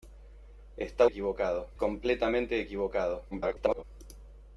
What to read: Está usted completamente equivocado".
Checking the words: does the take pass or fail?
fail